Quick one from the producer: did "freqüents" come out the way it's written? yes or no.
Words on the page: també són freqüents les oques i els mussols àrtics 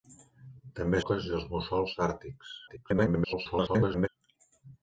no